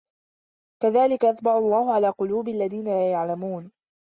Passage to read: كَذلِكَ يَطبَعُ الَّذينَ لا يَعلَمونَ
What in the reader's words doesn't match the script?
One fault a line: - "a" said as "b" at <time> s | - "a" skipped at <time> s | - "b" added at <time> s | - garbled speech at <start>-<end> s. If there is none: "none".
- "اللَّهُ عَلى قُلوبِ" added at 1.6 s